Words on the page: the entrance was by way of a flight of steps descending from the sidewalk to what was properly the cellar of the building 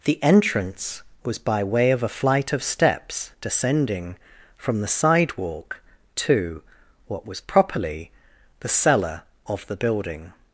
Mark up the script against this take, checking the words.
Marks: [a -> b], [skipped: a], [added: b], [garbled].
the entrance was by way of a flight of steps descending from the sidewalk to what was properly the cellar of the building